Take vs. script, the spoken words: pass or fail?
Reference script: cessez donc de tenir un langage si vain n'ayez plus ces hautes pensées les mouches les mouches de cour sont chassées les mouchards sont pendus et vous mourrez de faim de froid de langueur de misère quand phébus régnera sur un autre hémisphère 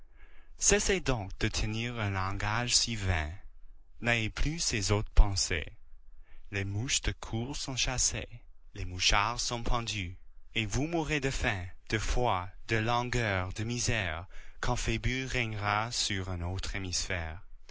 fail